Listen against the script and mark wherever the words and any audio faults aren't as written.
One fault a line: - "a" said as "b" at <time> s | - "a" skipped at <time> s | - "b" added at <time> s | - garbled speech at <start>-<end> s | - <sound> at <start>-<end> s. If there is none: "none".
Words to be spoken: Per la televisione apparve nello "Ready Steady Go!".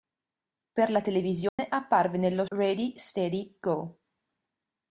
- dropout at 1.5-1.6 s